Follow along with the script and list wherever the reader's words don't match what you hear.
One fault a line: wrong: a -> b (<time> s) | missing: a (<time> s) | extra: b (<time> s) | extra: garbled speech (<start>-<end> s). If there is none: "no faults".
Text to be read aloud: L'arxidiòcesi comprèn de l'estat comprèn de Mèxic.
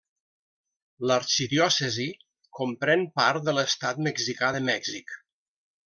extra: part (3.2 s)
wrong: comprèn -> mexicà (4.1 s)